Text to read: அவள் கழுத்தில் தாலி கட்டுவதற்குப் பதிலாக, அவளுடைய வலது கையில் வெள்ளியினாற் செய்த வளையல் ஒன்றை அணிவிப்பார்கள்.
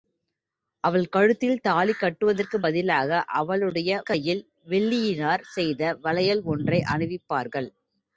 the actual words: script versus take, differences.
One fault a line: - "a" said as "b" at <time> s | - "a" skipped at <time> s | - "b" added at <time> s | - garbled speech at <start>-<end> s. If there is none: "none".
- "வலது" skipped at 3.9 s